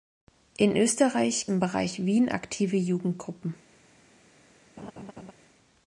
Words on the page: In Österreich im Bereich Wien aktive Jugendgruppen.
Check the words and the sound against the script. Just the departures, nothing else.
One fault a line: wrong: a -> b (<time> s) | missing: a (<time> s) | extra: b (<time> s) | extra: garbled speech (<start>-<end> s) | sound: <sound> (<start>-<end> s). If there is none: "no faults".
sound: laugh (4.8-5.3 s)